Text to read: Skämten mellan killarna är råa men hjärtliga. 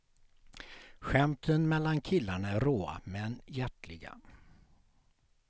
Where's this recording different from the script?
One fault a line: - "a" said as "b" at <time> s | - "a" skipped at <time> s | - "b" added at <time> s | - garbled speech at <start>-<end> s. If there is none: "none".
none